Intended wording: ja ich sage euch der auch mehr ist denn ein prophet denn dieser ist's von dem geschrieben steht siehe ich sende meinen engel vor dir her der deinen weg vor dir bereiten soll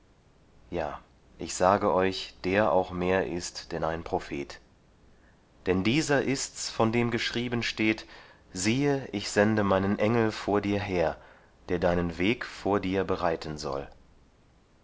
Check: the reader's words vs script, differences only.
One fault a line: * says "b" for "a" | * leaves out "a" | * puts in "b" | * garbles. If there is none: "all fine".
all fine